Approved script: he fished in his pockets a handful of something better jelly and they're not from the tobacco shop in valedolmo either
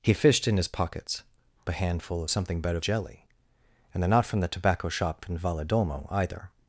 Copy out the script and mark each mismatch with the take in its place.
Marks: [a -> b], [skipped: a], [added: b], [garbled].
he fished in his pockets a handful of something better jelly and they're not from the tobacco shop in valedolmo either